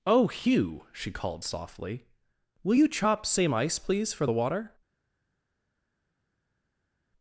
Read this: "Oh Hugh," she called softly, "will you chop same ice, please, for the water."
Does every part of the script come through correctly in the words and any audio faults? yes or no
yes